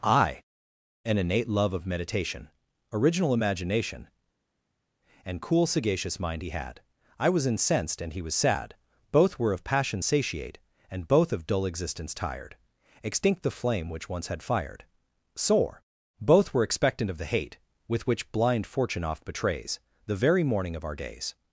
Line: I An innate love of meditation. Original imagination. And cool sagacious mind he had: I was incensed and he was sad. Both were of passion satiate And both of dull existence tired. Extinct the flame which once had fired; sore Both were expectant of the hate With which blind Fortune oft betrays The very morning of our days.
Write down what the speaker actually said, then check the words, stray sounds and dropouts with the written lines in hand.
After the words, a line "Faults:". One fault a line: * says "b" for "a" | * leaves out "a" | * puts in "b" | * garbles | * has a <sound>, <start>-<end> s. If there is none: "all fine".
I An innate love of meditation. Original imagination. And cool sagacious mind he had: I was incensed and he was sad. Both were of passion satiate And both of dull existence tired. Extinct the flame which once had fired; sore Both were expectant of the hate With which blind Fortune oft betrays The very morning of our days.
Faults:
all fine